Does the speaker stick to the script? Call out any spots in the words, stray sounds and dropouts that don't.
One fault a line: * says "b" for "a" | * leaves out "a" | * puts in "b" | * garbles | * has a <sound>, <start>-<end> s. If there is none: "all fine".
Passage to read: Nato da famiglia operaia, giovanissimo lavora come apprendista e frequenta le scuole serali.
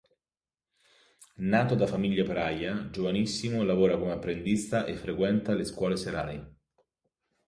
all fine